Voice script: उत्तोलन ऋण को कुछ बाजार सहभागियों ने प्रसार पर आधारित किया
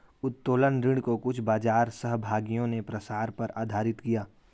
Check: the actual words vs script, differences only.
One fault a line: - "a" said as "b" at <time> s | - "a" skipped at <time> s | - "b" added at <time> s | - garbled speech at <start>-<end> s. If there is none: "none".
none